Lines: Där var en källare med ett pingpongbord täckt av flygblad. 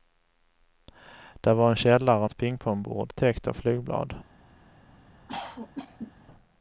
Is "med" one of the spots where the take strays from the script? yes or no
yes